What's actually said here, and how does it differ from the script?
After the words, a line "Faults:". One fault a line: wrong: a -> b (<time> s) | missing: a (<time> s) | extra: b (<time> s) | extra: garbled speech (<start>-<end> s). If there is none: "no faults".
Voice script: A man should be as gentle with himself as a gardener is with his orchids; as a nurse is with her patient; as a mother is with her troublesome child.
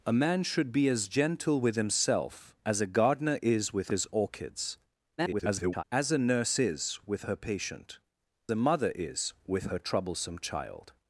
A man should be as gentle with himself as a gardener is with his orchids; [garbled] as a nurse is with her patient; a mother is with her troublesome child.
Faults:
extra: garbled speech (5.2-5.8 s)
missing: as (8.0 s)